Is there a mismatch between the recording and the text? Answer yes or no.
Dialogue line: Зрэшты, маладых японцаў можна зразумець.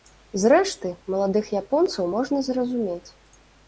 no